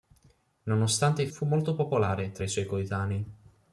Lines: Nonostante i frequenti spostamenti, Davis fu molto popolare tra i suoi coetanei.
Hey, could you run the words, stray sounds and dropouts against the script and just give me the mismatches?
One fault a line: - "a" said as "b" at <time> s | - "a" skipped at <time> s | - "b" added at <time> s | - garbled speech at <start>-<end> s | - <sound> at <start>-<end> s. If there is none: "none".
- "frequenti spostamenti Davis" skipped at 1.3 s